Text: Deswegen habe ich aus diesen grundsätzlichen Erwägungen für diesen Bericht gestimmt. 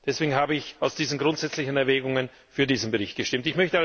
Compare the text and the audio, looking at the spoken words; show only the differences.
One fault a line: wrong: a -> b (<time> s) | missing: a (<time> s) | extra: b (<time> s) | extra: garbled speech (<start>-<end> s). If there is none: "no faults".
no faults